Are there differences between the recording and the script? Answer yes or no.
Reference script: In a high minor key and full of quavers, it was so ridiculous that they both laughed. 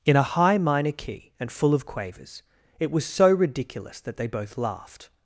no